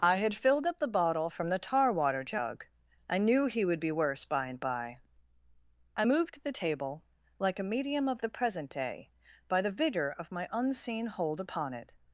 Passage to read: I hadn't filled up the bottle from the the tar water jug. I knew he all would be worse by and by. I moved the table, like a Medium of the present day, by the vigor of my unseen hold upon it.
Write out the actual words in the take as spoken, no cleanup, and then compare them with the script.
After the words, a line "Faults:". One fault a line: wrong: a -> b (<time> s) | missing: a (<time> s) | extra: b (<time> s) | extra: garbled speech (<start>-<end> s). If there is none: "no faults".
I had filled up the bottle from the tar water jug. I knew he would be worse by and by. I moved the table, like a Medium of the present day, by the vigor of my unseen hold upon it.
Faults:
wrong: hadn't -> had (0.1 s)
missing: the (1.6 s)
missing: all (3.6 s)